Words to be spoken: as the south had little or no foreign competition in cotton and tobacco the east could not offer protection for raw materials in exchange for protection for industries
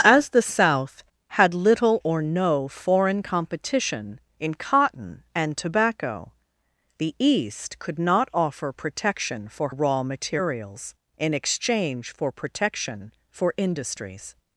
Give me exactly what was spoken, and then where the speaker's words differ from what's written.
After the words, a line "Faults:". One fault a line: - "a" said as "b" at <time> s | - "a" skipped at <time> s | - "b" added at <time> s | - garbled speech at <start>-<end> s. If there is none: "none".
as the south had little or no foreign competition in cotton and tobacco the east could not offer protection for raw materials in exchange for protection for industries
Faults:
none